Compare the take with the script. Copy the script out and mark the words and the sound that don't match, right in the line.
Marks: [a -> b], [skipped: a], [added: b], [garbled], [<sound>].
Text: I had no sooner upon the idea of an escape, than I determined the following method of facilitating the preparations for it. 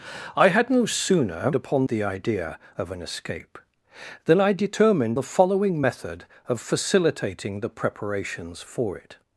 I had no sooner upon the idea of an escape, than I determined the following method of facilitating the preparations for it.